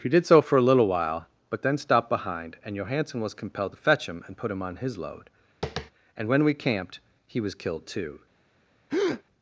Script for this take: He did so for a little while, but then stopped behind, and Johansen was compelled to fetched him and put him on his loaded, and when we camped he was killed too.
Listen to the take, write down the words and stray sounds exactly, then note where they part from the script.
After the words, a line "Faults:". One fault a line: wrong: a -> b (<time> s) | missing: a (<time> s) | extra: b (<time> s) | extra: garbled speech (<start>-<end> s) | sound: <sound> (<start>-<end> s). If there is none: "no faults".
He did so for a little while, but then stopped behind, and Johansen was compelled to fetch him and put him on his load, and when we camped he was killed too.
Faults:
wrong: fetched -> fetch (3.8 s)
wrong: loaded -> load (5.0 s)
sound: tap (5.6-5.9 s)
sound: breath (8.9-9.2 s)